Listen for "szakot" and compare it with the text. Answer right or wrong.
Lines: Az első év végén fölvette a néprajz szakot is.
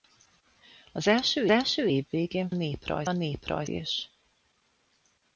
wrong